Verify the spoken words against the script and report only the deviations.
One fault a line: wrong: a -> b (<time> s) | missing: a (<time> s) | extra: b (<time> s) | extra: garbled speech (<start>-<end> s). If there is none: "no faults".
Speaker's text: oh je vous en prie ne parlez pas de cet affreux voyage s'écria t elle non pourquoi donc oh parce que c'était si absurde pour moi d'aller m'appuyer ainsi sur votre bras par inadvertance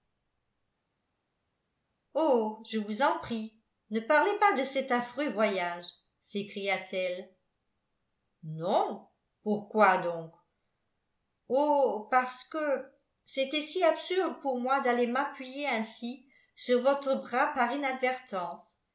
no faults